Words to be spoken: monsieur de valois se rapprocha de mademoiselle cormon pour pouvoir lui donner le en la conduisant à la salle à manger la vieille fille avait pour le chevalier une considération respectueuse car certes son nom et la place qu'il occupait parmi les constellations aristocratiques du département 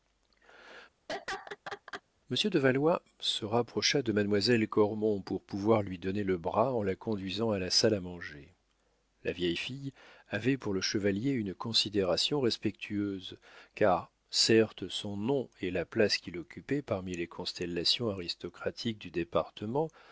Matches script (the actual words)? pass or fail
fail